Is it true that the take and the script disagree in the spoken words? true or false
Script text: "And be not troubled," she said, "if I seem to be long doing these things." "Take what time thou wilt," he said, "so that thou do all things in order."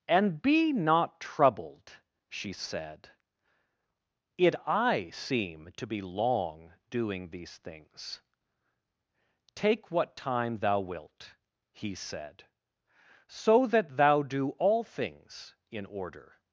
true